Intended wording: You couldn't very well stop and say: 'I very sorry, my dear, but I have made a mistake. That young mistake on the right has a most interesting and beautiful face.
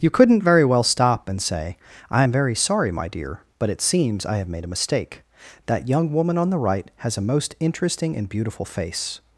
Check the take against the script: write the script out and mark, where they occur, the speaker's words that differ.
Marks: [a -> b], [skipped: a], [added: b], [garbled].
You couldn't very well stop and say: 'I [added: am] very sorry, my dear, but [added: it seems] I have made a mistake. That young [mistake -> woman] on the right has a most interesting and beautiful face.